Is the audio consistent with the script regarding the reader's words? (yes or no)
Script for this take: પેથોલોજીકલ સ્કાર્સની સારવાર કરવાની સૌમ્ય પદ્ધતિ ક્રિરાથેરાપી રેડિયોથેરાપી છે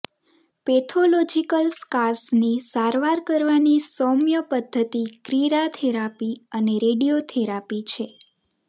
no